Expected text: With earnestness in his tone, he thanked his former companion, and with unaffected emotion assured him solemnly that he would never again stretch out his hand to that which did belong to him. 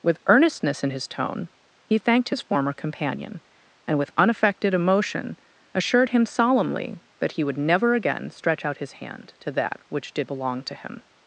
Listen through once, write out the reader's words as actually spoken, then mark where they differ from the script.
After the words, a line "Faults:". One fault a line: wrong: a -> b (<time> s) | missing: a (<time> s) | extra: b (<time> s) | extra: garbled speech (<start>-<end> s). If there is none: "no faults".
With earnestness in his tone, he thanked his former companion, and with unaffected emotion assured him solemnly that he would never again stretch out his hand to that which did belong to him.
Faults:
no faults